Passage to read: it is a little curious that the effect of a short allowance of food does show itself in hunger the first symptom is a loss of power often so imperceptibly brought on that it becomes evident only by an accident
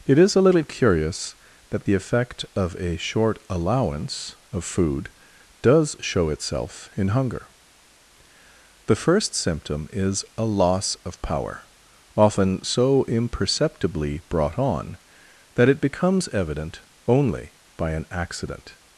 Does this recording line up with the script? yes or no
yes